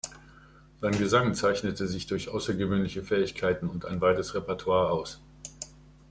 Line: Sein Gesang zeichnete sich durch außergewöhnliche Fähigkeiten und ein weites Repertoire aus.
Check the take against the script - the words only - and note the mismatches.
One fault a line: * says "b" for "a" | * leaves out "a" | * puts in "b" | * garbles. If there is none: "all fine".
all fine